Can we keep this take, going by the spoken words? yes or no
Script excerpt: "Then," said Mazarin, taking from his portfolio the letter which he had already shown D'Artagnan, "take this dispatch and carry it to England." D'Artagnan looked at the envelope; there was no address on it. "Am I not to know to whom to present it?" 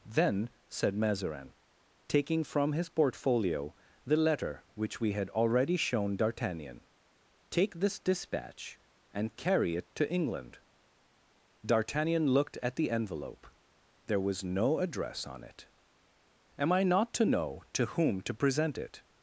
no